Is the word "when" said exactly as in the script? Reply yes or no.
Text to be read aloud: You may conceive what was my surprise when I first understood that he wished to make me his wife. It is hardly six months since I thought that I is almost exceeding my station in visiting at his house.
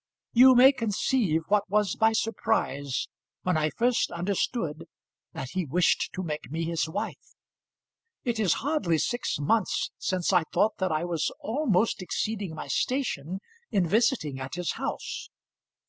yes